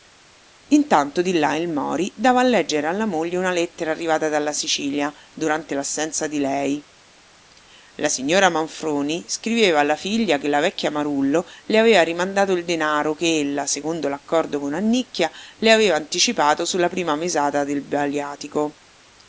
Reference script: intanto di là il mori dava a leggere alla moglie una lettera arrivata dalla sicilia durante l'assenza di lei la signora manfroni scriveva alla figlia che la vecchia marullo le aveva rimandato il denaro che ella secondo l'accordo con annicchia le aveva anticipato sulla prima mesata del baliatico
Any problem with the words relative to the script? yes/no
no